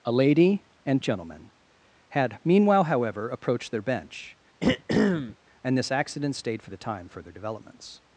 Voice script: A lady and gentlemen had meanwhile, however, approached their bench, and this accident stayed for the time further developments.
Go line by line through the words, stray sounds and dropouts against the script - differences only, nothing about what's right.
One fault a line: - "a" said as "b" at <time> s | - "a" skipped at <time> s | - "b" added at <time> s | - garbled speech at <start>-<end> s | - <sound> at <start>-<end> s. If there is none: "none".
- throat clearing at 4.6-5.4 s